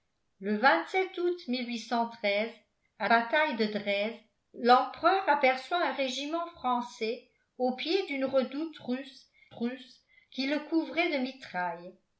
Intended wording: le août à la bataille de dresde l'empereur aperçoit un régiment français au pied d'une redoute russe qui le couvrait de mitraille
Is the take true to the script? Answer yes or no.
no